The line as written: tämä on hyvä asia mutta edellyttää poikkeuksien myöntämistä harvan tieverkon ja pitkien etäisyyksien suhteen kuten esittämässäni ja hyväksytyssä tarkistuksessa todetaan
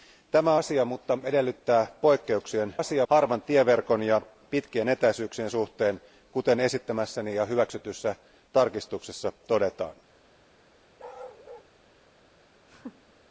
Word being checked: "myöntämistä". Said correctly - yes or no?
no